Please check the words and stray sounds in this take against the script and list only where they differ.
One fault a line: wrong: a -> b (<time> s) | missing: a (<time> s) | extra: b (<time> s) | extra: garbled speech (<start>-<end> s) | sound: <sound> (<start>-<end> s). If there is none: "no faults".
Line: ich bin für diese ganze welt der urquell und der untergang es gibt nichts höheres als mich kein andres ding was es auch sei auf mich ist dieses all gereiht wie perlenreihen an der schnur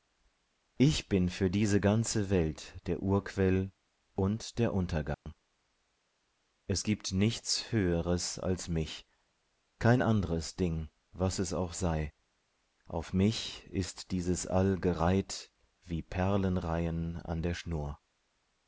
sound: dropout (5.1-5.3 s)